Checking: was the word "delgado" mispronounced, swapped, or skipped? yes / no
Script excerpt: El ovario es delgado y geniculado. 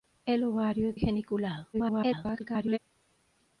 yes